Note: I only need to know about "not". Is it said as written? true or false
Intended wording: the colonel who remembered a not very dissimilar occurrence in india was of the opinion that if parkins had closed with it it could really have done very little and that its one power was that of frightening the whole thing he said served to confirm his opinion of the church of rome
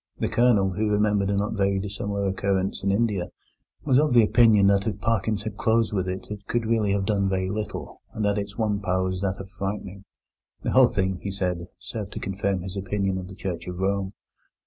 true